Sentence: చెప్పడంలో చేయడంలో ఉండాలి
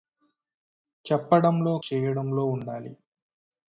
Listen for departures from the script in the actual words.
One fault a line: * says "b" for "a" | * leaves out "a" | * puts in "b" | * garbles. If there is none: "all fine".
all fine